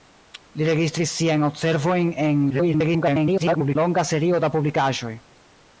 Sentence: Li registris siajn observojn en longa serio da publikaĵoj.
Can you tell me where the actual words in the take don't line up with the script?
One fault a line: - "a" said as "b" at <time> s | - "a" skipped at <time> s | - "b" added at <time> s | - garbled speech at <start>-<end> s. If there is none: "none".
- garbled speech at 2.5-3.8 s